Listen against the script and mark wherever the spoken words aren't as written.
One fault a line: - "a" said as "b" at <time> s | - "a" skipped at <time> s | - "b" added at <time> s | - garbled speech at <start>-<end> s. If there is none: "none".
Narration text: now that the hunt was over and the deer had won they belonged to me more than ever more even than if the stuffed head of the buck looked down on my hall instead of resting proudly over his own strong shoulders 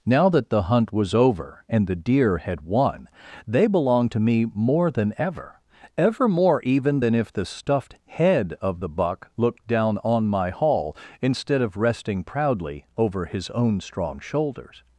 - "ever" added at 6.0 s